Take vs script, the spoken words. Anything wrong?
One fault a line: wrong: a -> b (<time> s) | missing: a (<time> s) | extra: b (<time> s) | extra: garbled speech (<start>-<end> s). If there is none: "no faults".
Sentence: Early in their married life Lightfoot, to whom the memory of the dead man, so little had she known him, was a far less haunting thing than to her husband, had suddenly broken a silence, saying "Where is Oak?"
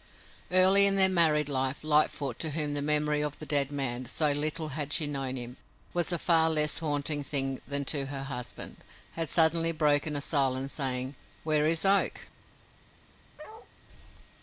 no faults